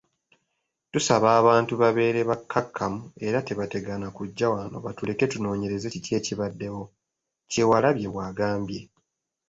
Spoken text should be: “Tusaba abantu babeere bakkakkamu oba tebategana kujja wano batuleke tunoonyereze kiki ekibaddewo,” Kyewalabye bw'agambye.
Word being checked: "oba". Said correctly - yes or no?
no